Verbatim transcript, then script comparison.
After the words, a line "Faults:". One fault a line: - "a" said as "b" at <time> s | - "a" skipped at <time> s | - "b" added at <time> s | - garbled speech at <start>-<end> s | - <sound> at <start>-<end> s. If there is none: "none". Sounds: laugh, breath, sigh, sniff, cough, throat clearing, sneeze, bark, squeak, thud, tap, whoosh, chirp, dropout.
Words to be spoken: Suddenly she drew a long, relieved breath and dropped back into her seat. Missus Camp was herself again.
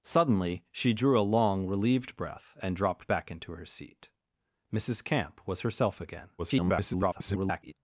Suddenly she drew a long, relieved breath and dropped back into her seat. Missus Camp was herself again. [garbled]
Faults:
- garbled speech at 6.4-7.7 s